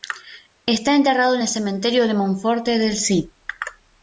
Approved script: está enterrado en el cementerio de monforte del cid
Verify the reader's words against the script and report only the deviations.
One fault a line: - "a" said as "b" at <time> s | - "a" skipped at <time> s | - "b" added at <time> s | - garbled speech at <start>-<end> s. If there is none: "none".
none